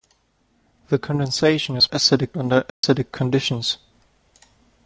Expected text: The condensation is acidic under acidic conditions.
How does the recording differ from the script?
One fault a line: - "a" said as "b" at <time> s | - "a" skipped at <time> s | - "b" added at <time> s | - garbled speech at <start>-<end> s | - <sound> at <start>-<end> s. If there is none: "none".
- dropout at 2.7-2.8 s